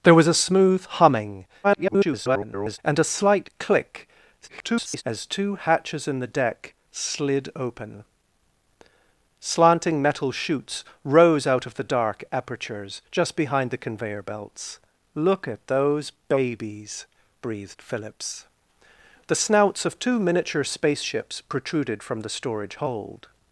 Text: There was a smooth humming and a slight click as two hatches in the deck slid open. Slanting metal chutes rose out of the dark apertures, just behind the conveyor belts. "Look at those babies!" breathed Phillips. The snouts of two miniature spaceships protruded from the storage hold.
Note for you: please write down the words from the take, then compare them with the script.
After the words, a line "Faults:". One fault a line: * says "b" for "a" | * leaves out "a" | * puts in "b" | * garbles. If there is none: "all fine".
There was a smooth humming [garbled] and a slight click [garbled] as two hatches in the deck slid open. Slanting metal chutes rose out of the dark apertures, just behind the conveyor belts. "Look at those babies!" breathed Phillips. The snouts of two miniature spaceships protruded from the storage hold.
Faults:
* garbles
* garbles